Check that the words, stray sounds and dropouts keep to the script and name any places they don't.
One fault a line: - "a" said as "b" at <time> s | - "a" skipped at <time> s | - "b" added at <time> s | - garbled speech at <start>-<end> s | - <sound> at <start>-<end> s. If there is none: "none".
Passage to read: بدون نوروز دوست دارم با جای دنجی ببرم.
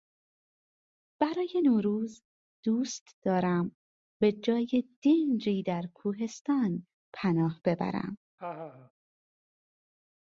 - "بدون" said as "برای" at 1.2 s
- "با" said as "به" at 4.2 s
- "در کوهستان پناه" added at 5.6 s
- laugh at 8.4-8.9 s